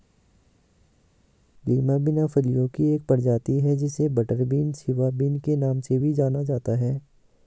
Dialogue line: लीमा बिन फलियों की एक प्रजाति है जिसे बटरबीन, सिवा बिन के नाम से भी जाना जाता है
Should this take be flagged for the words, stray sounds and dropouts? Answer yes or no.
no